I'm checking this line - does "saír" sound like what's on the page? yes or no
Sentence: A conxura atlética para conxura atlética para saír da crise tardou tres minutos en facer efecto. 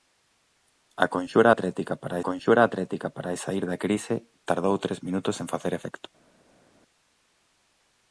yes